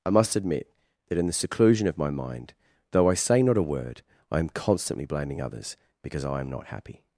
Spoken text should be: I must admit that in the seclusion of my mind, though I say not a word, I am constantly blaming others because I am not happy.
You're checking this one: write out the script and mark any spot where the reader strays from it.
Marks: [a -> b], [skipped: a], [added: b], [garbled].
I must admit that in the seclusion of my mind, though I say not a word, I am constantly blaming others because I am not happy.